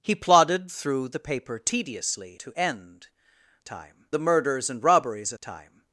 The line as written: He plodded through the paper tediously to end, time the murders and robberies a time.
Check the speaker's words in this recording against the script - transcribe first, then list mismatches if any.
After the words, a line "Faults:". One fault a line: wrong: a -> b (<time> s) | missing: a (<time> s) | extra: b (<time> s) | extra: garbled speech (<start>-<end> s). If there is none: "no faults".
He plodded through the paper tediously to end, time the murders and robberies a time.
Faults:
no faults